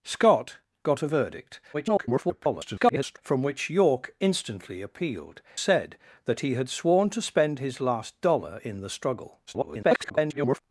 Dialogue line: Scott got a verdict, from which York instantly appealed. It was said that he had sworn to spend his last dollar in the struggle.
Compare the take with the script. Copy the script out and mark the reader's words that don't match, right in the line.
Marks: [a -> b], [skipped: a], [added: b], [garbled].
Scott got a verdict, [garbled] from which York instantly appealed. [skipped: It was] said that he had sworn to spend his last dollar in the struggle. [garbled]